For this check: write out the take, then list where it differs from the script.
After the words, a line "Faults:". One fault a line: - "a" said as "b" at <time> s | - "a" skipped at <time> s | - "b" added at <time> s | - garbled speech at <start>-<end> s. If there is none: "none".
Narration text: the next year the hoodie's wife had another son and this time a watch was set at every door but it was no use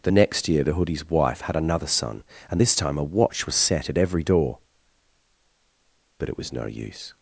the next year the hoodie's wife had another son and this time a watch was set at every door but it was no use
Faults:
none